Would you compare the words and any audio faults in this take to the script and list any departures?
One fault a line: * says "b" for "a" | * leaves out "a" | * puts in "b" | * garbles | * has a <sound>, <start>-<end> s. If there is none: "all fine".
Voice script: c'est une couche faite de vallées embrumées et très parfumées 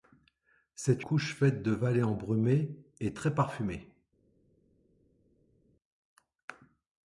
* leaves out "une"